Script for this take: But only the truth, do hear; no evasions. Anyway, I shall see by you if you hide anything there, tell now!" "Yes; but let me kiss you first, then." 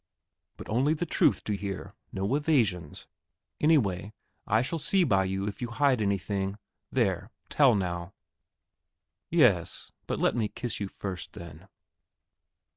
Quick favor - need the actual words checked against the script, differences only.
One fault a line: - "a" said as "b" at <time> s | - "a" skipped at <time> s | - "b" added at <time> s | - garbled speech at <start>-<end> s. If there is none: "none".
none